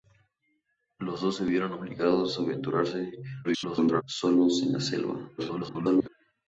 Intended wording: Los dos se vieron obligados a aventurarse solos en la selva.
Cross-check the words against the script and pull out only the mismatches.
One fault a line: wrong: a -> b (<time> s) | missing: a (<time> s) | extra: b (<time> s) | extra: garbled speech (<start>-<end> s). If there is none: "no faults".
extra: garbled speech (3.4-4.0 s)
extra: garbled speech (5.4-6.1 s)